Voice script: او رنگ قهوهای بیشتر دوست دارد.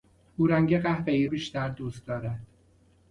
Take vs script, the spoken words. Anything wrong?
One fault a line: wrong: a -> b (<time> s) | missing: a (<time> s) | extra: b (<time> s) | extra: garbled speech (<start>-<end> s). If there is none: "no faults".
no faults